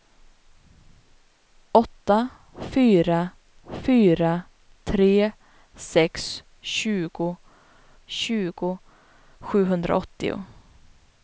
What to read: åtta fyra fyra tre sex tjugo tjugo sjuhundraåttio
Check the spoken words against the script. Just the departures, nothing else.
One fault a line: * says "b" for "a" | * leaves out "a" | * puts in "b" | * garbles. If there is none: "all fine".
all fine